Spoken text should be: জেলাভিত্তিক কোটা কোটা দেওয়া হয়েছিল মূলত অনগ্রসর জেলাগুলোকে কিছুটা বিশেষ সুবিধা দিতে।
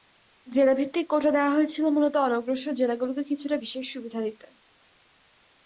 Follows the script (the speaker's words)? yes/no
no